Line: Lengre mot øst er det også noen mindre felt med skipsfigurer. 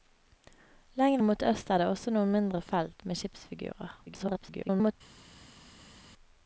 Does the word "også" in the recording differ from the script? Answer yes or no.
no